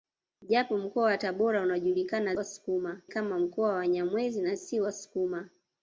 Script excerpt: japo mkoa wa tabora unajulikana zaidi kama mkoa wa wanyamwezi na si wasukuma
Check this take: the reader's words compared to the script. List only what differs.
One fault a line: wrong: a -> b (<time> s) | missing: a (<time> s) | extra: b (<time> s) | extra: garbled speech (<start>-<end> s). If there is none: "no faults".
wrong: zaidi -> wasukuma (2.3 s)